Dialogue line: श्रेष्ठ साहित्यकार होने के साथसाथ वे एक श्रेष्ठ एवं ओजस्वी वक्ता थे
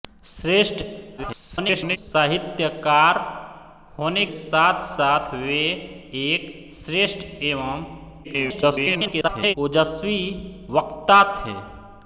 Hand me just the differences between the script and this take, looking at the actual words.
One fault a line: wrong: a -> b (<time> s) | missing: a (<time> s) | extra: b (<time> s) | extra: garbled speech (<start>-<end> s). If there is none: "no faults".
extra: garbled speech (1.2-2.0 s)
missing: के (4.2 s)
extra: garbled speech (8.2-9.5 s)